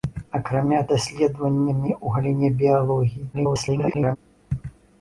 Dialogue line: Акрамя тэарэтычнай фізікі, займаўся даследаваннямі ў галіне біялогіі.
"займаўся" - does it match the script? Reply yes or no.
no